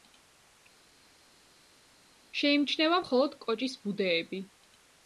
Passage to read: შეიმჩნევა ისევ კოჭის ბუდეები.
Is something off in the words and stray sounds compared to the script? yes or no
yes